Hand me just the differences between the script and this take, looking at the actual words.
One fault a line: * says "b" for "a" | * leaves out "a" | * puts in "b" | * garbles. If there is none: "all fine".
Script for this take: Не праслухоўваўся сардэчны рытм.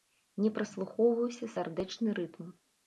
all fine